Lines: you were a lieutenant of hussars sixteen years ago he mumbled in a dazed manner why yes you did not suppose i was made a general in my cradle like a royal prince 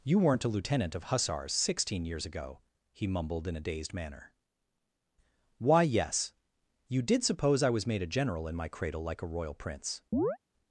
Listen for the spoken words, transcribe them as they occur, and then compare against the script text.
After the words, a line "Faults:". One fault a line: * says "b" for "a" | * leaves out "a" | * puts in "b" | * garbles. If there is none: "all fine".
you weren't a lieutenant of hussars sixteen years ago he mumbled in a dazed manner why yes you did suppose i was made a general in my cradle like a royal prince
Faults:
* says "weren't" for "were"
* leaves out "not"